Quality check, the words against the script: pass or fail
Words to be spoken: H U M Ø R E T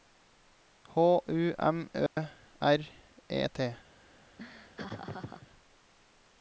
pass